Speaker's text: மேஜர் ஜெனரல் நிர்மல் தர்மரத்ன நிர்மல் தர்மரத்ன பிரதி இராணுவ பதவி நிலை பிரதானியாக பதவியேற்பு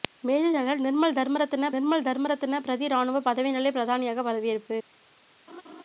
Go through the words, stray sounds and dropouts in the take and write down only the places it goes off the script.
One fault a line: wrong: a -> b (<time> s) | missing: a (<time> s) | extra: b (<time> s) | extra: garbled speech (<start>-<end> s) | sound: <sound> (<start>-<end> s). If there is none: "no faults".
sound: laugh (5.5-5.8 s)